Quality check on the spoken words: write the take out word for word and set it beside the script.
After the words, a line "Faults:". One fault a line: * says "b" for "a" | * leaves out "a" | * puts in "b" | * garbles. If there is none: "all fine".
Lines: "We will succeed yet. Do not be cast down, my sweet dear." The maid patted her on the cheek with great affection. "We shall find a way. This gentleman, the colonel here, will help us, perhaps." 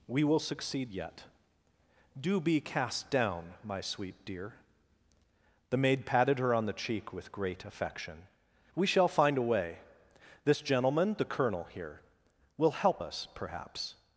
"We will succeed yet. Do be cast down, my sweet dear." The maid patted her on the cheek with great affection. "We shall find a way. This gentleman, the colonel here, will help us, perhaps."
Faults:
* leaves out "not"